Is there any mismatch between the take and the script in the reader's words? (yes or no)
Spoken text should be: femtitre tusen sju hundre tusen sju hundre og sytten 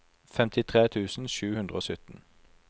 yes